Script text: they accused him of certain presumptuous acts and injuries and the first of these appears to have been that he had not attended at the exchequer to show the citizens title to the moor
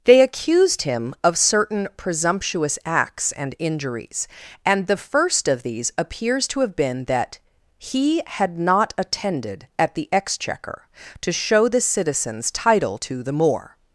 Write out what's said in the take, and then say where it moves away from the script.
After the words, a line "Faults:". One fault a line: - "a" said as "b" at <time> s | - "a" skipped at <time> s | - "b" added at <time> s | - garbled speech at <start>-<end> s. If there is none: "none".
they accused him of certain presumptuous acts and injuries and the first of these appears to have been that he had not attended at the exchequer to show the citizens title to the moor
Faults:
none